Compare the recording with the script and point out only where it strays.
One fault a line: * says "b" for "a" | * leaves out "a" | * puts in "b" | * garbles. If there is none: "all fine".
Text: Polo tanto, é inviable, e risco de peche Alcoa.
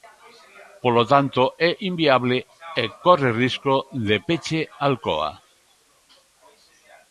* puts in "corre"